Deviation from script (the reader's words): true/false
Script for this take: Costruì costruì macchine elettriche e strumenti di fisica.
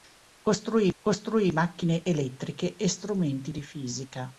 false